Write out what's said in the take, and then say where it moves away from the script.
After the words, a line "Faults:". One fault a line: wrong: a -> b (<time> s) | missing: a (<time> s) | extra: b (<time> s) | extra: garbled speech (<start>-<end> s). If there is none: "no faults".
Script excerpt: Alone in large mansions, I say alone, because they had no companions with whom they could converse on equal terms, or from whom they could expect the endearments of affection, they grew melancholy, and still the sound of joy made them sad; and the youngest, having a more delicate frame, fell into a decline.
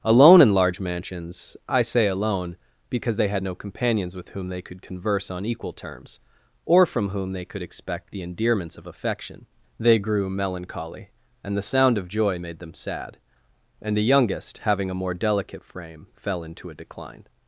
Alone in large mansions, I say alone, because they had no companions with whom they could converse on equal terms, or from whom they could expect the endearments of affection, they grew melancholy, and the sound of joy made them sad; and the youngest, having a more delicate frame, fell into a decline.
Faults:
missing: still (11.6 s)